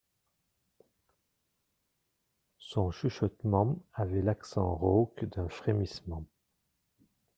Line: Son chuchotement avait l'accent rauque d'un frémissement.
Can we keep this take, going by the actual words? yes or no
yes